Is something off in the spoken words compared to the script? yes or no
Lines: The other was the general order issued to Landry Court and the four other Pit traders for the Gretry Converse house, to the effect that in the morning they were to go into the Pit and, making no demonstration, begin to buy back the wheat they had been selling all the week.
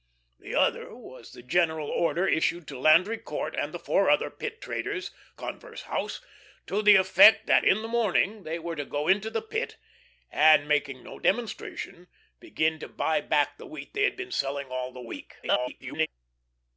yes